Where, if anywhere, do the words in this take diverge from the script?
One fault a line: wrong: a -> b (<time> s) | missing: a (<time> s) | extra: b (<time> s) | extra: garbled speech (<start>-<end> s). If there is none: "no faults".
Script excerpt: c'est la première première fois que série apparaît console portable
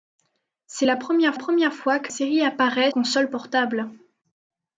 no faults